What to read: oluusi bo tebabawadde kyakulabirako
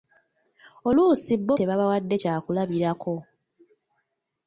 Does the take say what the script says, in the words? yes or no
yes